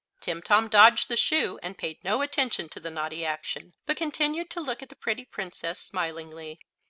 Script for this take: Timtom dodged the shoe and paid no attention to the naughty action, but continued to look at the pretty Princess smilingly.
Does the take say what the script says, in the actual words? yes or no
yes